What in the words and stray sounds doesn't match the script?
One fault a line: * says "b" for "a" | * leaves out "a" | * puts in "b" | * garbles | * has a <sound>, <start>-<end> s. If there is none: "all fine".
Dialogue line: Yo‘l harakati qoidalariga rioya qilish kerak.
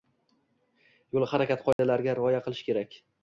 * has a dropout, 1.7-1.8 s